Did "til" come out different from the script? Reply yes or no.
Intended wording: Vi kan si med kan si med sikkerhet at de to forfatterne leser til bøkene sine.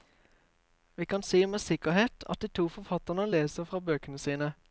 yes